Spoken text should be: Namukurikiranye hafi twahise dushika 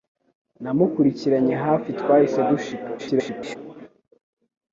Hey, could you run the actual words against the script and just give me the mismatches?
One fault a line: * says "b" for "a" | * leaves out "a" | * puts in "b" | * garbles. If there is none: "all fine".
* garbles